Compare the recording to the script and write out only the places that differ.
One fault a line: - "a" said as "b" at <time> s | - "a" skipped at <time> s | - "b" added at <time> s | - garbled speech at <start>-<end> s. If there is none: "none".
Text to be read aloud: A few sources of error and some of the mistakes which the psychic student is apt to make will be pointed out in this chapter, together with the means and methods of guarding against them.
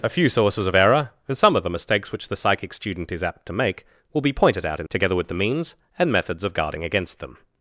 - "this chapter" skipped at 4.9 s